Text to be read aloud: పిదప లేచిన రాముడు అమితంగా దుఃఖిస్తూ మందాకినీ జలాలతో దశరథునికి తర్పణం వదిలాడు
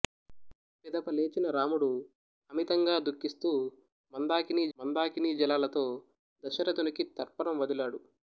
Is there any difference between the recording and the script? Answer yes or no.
yes